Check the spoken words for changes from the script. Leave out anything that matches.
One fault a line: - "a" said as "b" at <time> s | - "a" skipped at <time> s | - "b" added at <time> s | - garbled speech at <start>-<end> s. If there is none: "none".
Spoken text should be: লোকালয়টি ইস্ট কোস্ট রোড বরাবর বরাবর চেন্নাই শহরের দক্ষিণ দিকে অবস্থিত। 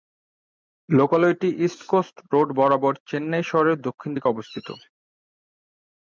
- "বরাবর" skipped at 2.9 s